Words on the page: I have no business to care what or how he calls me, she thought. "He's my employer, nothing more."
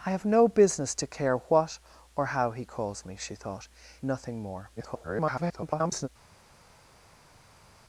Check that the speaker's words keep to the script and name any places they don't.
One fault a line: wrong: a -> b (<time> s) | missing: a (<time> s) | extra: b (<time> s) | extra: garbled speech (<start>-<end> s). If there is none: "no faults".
missing: He's my employer (3.7 s)
extra: garbled speech (4.8-6.1 s)